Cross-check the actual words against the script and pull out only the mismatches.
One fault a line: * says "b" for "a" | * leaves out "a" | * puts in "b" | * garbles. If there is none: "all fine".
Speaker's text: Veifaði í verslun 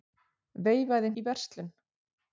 all fine